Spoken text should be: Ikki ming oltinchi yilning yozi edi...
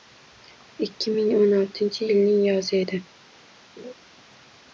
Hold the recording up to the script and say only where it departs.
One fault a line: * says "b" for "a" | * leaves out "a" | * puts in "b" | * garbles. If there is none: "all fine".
* puts in "o'n"